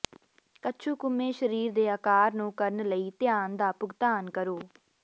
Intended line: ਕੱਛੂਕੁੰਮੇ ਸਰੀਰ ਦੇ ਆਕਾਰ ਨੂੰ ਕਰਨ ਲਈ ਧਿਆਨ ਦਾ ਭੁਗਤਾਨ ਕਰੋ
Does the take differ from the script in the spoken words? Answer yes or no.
no